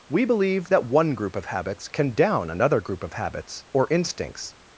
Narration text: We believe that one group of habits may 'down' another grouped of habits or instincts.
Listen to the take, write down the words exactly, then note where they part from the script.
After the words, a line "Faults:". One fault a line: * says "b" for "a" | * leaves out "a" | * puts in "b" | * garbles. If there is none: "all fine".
We believe that one group of habits can 'down' another group of habits or instincts.
Faults:
* says "can" for "may"
* says "group" for "grouped"